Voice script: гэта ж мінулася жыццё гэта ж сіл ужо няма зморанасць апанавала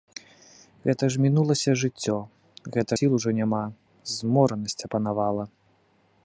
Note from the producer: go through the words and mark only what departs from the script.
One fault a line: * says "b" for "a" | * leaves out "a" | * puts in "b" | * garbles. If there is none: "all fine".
* leaves out "ж"